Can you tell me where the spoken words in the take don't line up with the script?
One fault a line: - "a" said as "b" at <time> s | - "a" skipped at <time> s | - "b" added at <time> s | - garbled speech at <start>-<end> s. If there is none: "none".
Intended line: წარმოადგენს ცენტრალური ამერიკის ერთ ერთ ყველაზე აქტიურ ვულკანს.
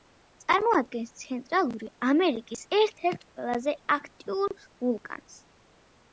none